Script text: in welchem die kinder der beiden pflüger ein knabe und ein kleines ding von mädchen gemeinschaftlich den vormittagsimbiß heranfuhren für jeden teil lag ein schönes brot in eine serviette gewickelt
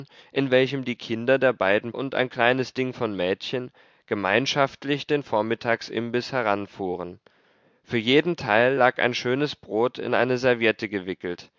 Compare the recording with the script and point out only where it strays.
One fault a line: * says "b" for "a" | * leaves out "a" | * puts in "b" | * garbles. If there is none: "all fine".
* leaves out "pflüger ein knabe"